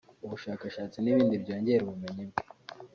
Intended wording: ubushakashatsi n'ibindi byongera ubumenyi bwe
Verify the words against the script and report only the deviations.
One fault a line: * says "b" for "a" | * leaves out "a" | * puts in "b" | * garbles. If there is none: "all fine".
all fine